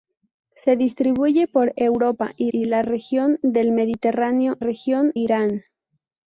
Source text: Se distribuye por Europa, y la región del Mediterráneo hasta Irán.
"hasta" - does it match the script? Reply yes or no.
no